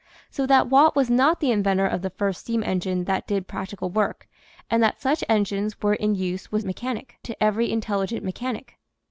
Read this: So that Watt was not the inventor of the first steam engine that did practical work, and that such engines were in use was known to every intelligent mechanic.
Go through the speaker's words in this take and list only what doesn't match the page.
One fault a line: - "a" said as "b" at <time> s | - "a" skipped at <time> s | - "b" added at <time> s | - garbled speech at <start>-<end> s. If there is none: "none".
- "known" said as "mechanic" at 6.6 s